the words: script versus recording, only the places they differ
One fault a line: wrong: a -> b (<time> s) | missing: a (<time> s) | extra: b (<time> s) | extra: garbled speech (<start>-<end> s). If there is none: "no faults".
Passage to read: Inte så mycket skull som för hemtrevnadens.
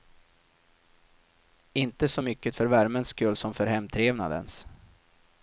extra: för värmens (2.5 s)